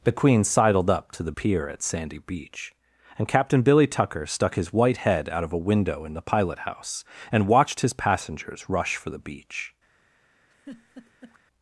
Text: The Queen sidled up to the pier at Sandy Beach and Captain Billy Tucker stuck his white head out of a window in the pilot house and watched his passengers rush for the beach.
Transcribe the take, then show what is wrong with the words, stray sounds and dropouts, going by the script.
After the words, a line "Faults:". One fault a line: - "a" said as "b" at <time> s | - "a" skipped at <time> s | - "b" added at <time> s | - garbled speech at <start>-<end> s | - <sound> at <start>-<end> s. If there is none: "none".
The Queen sidled up to the pier at Sandy Beach and Captain Billy Tucker stuck his white head out of a window in the pilot house and watched his passengers rush for the beach.
Faults:
- laugh at 10.5-11.4 s